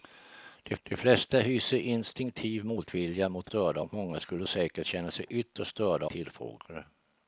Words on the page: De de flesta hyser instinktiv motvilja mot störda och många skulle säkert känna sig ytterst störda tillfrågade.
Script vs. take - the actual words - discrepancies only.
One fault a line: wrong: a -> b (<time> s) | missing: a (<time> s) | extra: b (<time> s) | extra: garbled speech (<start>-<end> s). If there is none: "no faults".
no faults